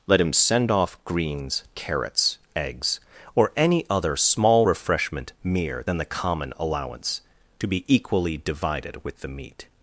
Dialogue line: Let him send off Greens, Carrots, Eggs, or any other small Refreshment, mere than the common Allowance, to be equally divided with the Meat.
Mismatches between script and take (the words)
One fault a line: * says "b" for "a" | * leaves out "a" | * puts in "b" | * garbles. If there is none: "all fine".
all fine